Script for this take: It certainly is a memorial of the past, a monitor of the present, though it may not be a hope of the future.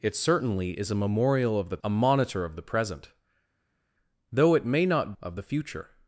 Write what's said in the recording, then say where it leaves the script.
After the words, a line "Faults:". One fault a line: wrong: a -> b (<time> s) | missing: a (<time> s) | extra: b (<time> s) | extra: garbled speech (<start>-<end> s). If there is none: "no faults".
It certainly is a memorial of the a monitor of the present, though it may not of the future.
Faults:
missing: past (1.8 s)
missing: be a hope (5.1 s)